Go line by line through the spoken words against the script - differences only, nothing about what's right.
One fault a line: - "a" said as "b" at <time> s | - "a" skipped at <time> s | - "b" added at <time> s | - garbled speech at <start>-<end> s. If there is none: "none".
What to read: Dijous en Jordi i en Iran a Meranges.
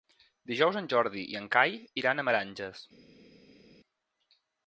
- "Cai" added at 1.6 s